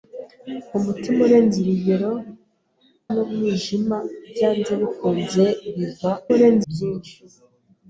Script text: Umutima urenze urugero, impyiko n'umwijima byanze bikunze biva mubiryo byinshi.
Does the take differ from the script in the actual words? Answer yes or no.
yes